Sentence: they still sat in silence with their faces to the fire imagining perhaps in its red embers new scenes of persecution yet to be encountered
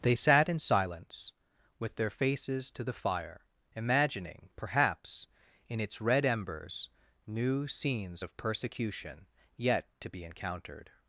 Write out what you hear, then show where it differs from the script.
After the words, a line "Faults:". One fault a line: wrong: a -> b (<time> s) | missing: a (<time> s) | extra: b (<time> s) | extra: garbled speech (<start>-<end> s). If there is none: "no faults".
they sat in silence with their faces to the fire imagining perhaps in its red embers new scenes of persecution yet to be encountered
Faults:
missing: still (0.1 s)